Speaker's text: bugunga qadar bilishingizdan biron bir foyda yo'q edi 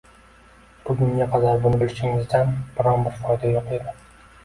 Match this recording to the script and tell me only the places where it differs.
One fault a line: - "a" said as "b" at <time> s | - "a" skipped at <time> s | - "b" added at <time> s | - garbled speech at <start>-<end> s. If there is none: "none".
- "buni" added at 1.7 s